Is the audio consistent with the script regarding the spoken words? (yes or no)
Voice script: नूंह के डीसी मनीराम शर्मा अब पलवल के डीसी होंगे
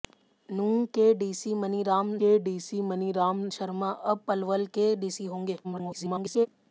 no